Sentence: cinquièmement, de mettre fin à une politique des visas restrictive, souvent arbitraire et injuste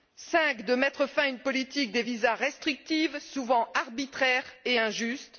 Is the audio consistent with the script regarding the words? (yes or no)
yes